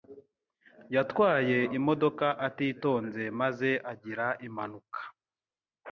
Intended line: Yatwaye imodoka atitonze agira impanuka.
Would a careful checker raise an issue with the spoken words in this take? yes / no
yes